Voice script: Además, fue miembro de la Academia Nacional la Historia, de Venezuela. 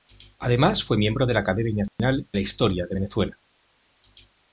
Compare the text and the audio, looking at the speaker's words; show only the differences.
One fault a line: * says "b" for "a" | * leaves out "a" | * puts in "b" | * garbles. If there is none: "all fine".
all fine